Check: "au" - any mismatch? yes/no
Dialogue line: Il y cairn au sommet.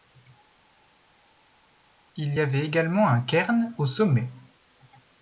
no